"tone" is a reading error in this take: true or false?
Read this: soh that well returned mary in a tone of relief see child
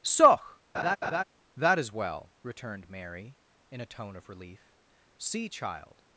false